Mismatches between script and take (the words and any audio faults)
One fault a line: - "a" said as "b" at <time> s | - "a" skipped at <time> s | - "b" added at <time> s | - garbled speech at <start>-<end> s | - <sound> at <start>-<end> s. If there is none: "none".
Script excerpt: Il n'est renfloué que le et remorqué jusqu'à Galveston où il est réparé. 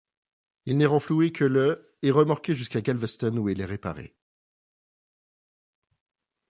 none